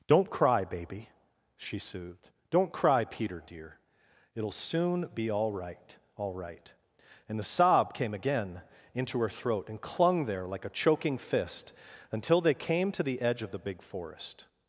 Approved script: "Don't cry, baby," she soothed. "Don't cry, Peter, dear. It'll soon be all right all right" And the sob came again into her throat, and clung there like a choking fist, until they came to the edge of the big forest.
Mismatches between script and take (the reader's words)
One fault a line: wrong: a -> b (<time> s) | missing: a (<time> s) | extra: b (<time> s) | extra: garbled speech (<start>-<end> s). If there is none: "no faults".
no faults